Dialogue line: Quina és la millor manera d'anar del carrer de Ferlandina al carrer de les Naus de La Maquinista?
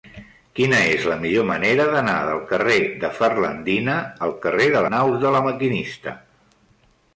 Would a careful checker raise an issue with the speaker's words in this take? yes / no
yes